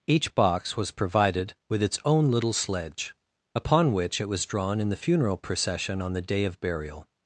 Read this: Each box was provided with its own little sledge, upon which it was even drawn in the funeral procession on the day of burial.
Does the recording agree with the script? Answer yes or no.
no